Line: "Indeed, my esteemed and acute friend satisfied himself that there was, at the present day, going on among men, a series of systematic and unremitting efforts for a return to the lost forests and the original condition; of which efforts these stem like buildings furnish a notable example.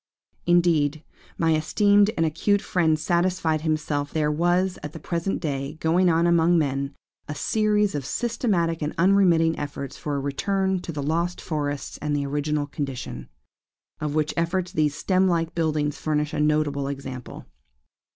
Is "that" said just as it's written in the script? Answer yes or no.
no